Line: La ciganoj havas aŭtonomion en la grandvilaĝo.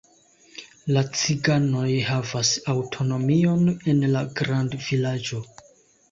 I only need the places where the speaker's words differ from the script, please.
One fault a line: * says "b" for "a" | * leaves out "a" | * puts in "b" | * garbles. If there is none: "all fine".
all fine